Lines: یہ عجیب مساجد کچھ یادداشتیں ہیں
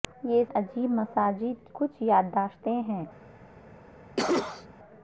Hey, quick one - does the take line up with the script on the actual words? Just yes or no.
yes